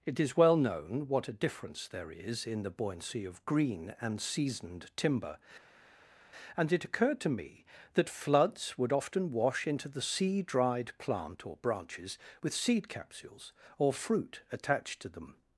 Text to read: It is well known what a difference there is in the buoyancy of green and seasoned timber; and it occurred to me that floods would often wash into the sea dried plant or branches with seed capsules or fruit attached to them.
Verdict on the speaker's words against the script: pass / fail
pass